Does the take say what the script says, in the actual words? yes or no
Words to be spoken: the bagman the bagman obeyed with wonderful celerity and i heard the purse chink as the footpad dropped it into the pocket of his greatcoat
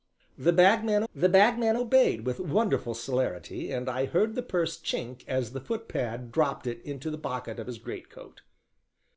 yes